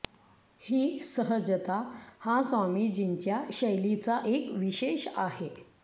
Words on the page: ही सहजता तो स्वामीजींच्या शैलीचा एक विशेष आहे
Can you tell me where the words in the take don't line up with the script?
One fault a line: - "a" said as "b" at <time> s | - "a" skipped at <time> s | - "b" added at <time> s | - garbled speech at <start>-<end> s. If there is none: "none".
- "तो" said as "हा" at 2.2 s